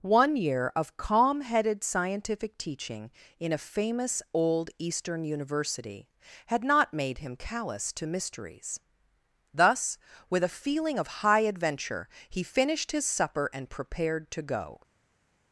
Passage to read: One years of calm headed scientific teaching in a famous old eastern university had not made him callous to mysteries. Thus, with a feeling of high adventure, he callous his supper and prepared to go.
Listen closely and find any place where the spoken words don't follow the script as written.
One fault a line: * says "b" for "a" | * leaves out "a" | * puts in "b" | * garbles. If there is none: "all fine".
* says "year" for "years"
* says "finished" for "callous"